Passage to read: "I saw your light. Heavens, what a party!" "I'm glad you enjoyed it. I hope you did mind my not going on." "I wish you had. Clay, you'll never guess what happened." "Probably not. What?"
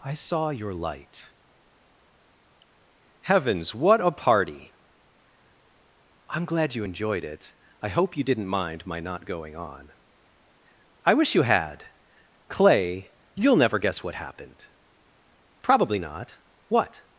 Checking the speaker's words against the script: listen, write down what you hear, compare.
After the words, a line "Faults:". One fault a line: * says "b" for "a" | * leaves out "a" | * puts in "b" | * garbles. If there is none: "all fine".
"I saw your light. Heavens, what a party!" "I'm glad you enjoyed it. I hope you didn't mind my not going on." "I wish you had. Clay, you'll never guess what happened." "Probably not. What?"
Faults:
* says "didn't" for "did"